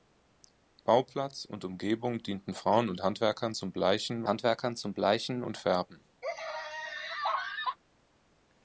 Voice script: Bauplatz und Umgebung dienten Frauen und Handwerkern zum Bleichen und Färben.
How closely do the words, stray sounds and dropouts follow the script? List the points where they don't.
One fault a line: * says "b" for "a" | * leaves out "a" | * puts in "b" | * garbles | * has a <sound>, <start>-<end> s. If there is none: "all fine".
* puts in "Handwerkern zum Bleichen"
* has a laugh, 6.2-7.8 s